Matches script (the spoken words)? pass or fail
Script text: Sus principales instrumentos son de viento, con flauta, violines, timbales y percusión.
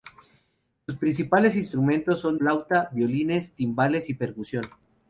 fail